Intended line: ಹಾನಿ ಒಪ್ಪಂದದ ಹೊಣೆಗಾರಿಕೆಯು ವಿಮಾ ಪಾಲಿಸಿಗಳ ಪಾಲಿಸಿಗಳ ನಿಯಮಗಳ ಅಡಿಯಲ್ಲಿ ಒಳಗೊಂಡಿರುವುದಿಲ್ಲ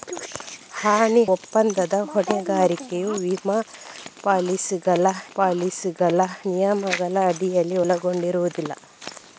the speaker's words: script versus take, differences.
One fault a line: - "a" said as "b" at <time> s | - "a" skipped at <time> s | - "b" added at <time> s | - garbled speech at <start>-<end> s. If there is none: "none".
none